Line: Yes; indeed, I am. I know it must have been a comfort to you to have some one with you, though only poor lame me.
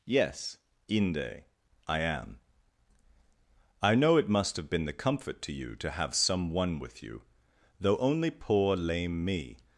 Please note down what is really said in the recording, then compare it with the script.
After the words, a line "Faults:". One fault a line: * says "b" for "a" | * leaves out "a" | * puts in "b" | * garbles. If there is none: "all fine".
Yes; inde, I am. I know it must have been the comfort to you to have some one with you, though only poor lame me.
Faults:
* says "inde" for "indeed"
* says "the" for "a"